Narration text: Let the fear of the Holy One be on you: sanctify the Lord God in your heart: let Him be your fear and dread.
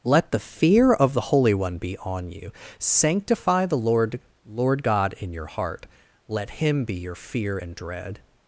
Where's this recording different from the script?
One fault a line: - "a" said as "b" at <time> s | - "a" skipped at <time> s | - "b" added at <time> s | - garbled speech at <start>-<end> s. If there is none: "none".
- "Lord" added at 4.4 s